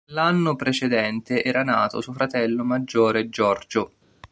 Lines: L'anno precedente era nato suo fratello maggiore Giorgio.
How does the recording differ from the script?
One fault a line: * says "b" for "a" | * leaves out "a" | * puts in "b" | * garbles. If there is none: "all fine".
all fine